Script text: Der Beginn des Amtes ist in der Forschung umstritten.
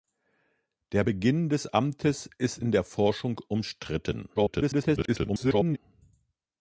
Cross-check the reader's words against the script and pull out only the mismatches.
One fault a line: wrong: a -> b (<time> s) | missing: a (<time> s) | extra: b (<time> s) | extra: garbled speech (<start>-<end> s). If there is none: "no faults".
extra: garbled speech (4.4-5.8 s)